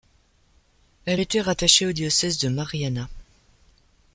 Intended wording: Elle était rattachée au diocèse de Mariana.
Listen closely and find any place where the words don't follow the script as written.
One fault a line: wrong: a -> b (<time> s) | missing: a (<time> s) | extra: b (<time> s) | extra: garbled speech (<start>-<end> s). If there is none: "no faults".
no faults